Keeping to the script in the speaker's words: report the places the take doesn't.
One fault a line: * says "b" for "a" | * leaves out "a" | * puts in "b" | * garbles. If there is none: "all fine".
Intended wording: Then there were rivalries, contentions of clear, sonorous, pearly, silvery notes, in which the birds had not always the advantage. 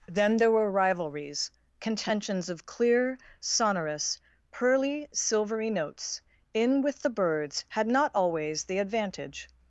* says "with" for "which"